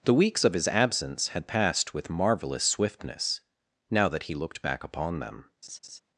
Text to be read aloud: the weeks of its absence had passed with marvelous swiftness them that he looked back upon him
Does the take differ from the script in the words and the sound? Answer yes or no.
yes